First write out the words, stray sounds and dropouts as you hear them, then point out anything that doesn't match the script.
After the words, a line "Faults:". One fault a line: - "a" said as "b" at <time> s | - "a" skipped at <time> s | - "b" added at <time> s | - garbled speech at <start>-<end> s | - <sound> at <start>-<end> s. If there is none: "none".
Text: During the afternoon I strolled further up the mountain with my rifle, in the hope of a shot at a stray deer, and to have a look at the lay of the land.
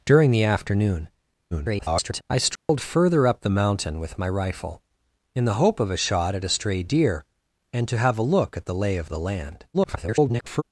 During the afternoon [garbled] I strolled further up the mountain with my rifle, in the hope of a shot at a stray deer, and to have a look at the lay of the land. [garbled]
Faults:
- garbled speech at 1.5-2.2 s
- dropout at 2.6-2.7 s
- garbled speech at 9.7-10.6 s